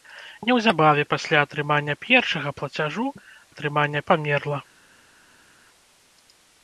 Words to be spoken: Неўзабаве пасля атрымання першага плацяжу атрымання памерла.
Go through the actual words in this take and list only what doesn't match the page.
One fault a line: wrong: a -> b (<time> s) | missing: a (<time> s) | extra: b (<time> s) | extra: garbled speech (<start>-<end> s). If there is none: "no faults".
no faults